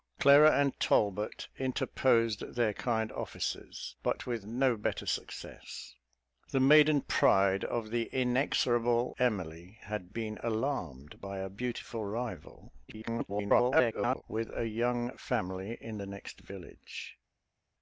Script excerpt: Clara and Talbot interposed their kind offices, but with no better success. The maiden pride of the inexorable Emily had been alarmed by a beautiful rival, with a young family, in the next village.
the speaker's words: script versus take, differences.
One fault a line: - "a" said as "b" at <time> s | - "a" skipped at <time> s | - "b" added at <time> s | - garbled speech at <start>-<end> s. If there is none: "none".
- garbled speech at 12.9-14.2 s